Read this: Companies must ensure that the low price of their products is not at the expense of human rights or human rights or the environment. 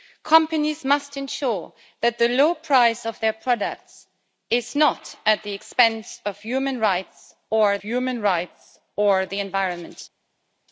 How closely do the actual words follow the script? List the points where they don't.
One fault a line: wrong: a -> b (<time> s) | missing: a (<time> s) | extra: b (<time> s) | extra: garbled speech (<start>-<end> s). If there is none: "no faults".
no faults